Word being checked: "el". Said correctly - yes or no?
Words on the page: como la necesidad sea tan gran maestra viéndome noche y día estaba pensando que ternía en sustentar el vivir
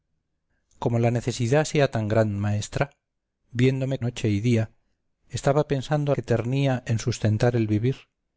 yes